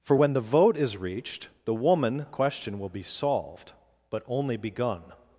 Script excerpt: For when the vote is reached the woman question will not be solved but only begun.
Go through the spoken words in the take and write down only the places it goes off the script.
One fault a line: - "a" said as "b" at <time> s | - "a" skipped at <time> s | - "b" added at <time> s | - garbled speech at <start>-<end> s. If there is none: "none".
- "not" skipped at 2.9 s